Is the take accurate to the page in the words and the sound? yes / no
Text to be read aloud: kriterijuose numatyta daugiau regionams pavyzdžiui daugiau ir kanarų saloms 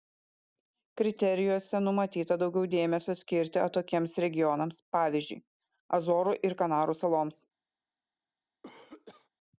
no